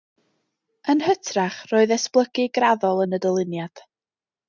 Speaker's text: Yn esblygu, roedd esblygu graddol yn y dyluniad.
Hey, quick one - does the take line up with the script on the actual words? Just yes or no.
no